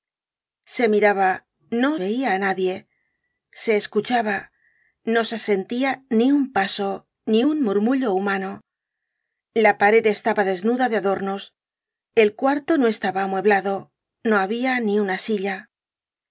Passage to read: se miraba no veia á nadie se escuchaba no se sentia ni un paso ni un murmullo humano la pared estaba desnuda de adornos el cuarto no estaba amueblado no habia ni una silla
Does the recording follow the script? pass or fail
pass